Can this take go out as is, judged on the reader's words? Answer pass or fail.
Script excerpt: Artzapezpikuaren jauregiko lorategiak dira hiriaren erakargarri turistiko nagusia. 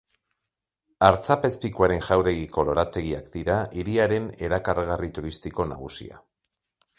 pass